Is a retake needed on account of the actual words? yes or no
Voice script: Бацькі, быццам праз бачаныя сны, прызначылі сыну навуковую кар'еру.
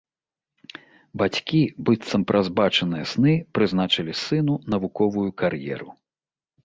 no